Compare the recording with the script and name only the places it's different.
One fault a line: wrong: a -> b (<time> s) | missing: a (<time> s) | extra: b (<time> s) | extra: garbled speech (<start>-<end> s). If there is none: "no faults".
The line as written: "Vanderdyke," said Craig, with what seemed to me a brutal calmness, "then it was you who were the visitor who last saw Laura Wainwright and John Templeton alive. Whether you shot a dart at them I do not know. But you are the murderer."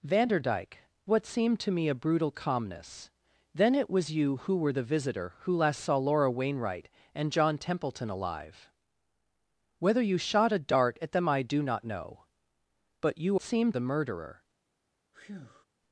missing: said Craig with (0.8 s)
wrong: are -> seemed (13.4 s)